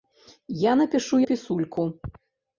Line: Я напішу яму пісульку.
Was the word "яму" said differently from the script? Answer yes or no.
yes